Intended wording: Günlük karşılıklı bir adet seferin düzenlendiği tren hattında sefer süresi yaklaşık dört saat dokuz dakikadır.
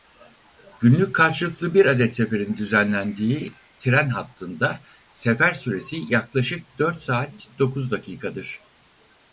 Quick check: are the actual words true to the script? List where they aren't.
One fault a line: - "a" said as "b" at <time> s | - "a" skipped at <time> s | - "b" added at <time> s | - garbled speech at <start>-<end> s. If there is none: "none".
none